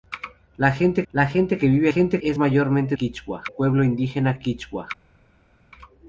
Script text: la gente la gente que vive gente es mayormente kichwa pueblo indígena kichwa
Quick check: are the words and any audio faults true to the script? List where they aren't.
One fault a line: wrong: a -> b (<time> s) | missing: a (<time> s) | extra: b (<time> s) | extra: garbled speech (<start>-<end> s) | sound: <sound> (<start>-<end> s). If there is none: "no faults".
no faults